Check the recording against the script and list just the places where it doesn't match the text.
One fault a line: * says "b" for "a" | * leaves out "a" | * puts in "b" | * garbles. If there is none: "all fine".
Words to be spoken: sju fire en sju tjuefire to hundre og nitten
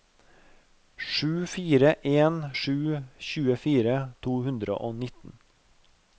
all fine